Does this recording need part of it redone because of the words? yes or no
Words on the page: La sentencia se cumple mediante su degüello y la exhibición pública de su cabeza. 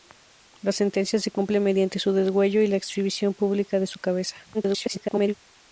yes